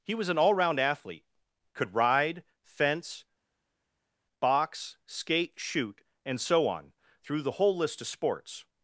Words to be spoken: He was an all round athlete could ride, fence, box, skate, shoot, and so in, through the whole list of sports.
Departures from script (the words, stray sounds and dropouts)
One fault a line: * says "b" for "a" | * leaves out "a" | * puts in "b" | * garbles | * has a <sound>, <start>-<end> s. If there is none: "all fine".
* says "on" for "in"